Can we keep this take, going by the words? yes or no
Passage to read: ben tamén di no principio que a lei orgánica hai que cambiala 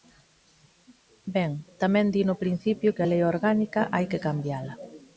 yes